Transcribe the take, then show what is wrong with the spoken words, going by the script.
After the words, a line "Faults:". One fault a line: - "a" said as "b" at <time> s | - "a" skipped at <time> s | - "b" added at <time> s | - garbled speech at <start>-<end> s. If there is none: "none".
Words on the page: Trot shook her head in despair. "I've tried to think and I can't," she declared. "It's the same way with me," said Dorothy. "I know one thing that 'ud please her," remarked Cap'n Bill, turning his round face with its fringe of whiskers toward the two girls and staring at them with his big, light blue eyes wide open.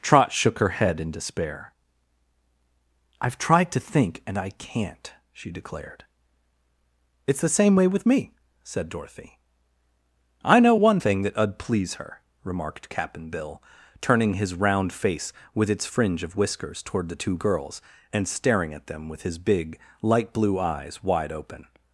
Trot shook her head in despair. "I've tried to think and I can't," she declared. "It's the same way with me," said Dorothy. "I know one thing that 'ud please her," remarked Cap'n Bill, turning his round face with its fringe of whiskers toward the two girls and staring at them with his big, light blue eyes wide open.
Faults:
none